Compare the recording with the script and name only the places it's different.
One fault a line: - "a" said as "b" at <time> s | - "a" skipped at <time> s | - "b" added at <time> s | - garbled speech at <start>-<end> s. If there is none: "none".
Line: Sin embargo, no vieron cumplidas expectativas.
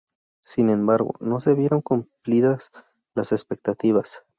- "se" added at 1.4 s
- "las" added at 3.1 s